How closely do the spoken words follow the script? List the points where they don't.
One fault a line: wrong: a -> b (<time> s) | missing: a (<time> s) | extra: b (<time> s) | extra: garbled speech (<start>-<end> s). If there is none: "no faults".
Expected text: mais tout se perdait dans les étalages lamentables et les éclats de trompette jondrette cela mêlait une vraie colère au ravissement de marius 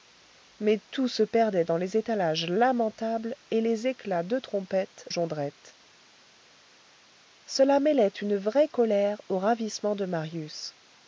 no faults